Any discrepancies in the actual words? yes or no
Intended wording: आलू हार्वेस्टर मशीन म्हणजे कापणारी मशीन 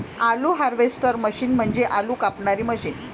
yes